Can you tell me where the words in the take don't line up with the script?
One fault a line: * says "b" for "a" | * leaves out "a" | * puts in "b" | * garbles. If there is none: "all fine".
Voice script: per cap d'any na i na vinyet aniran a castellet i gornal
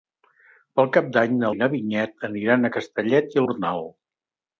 all fine